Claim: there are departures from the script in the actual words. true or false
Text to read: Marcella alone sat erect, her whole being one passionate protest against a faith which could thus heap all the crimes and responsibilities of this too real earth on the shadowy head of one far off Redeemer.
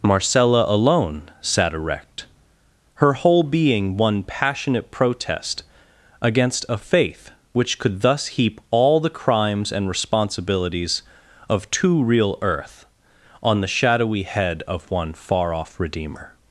true